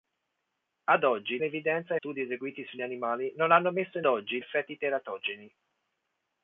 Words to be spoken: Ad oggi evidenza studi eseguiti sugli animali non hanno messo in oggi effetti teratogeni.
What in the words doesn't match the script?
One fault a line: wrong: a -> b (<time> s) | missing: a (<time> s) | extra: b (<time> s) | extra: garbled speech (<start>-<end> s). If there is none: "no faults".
no faults